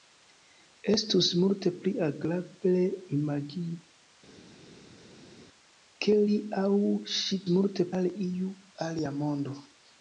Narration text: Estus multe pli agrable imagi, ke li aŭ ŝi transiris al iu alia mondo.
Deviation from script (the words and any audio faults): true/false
true